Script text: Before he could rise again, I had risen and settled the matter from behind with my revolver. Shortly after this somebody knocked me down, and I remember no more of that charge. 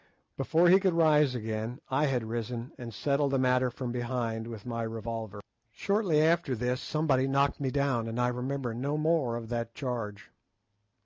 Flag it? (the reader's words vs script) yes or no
no